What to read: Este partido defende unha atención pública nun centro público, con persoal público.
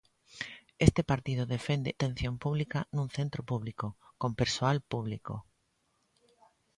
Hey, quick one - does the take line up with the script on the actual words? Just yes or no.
no